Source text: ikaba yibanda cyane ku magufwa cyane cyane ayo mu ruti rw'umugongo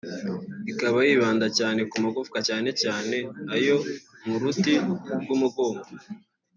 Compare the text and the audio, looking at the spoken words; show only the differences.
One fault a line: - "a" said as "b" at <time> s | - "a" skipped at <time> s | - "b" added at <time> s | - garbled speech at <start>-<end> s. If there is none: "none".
none